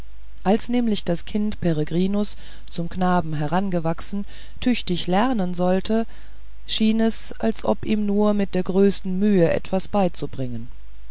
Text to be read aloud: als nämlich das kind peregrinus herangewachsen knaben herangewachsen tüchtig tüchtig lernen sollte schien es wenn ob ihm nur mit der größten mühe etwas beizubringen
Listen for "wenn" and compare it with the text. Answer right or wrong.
wrong